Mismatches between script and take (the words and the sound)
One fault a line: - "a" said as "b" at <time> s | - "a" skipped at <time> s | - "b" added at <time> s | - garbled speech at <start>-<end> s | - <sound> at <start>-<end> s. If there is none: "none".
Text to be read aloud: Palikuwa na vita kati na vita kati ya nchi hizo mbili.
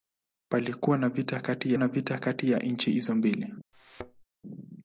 - thud at 3.7-4.2 s